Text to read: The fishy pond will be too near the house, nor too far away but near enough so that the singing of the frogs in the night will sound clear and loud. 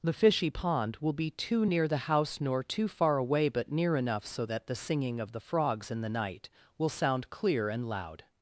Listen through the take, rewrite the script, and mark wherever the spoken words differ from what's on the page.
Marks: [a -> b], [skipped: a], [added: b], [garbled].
The fishy pond will be too near the house, nor too far away but near enough so that the singing of the frogs in the night will sound clear and loud.